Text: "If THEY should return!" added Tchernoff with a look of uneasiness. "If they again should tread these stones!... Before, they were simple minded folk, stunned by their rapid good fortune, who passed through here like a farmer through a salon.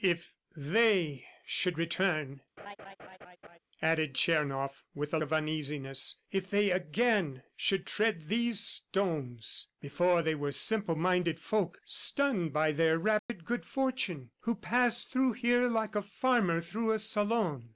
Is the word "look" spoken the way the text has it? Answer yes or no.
no